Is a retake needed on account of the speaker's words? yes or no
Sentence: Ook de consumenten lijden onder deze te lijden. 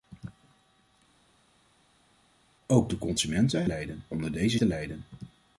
no